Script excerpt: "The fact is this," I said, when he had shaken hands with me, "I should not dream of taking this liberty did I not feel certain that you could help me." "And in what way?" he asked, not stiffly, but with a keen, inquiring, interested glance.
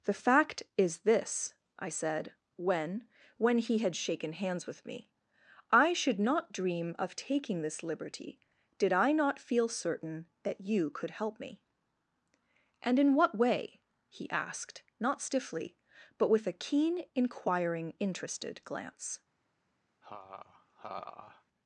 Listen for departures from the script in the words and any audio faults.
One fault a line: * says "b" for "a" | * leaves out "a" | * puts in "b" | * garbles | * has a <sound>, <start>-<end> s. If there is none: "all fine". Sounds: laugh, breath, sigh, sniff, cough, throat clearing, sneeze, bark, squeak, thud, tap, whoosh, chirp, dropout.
* puts in "when"
* has a laugh, 20.0-21.4 s